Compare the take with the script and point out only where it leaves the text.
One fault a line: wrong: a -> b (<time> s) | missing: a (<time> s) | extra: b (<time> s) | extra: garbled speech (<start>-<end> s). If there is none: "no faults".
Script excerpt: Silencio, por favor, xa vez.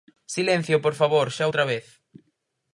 extra: outra (1.5 s)